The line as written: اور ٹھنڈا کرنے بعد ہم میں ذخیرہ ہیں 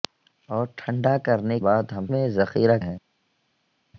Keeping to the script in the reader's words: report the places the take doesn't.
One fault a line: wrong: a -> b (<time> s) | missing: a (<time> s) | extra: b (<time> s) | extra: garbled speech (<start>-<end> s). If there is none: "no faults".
no faults